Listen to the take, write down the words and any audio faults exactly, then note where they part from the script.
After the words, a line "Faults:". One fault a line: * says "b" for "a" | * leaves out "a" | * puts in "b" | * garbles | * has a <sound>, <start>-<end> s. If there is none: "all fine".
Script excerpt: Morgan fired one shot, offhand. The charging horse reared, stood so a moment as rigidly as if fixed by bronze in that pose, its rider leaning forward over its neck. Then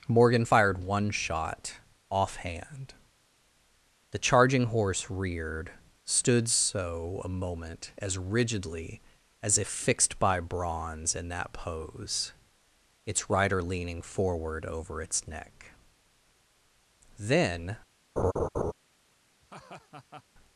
Morgan fired one shot, offhand. The charging horse reared, stood so a moment as rigidly as if fixed by bronze in that pose, its rider leaning forward over its neck. Then
Faults:
* has a laugh, 18.2-18.7 s
* has a laugh, 19.4-20.2 s